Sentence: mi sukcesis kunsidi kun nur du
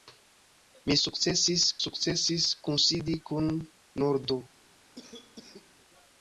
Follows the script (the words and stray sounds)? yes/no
no